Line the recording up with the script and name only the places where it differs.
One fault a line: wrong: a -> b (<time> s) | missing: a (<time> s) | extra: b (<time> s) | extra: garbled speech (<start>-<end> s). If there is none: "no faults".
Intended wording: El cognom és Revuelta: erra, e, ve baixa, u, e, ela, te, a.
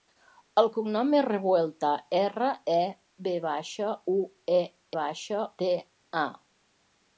wrong: ela -> baixa (5.0 s)